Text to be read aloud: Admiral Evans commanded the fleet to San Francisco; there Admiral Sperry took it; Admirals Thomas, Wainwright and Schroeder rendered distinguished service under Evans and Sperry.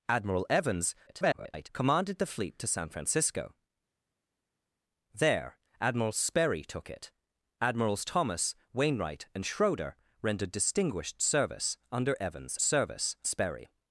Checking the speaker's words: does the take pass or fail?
fail